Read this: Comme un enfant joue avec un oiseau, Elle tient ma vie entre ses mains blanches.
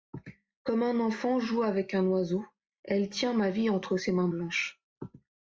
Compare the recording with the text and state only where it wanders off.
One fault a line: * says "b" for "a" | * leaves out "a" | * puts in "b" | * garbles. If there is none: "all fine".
all fine